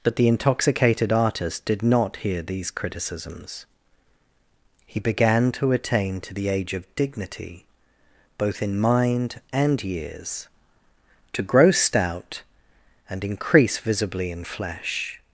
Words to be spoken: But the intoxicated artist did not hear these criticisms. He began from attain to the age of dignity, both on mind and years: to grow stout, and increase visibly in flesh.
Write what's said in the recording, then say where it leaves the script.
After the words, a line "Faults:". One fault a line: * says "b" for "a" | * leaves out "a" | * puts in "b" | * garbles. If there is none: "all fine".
But the intoxicated artist did not hear these criticisms. He began to attain to the age of dignity, both in mind and years: to grow stout, and increase visibly in flesh.
Faults:
* says "to" for "from"
* says "in" for "on"